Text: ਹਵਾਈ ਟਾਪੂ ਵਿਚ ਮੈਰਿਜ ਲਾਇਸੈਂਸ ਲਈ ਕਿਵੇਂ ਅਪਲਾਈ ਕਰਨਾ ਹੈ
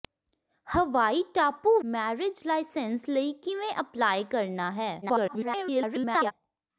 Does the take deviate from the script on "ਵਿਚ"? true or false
true